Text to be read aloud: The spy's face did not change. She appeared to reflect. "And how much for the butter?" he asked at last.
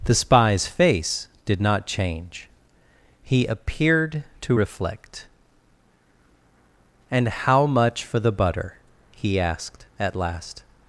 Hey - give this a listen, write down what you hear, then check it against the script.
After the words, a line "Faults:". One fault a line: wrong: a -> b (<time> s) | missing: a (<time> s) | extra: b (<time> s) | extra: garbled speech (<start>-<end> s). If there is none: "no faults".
The spy's face did not change. He appeared to reflect. "And how much for the butter?" he asked at last.
Faults:
wrong: She -> He (3.2 s)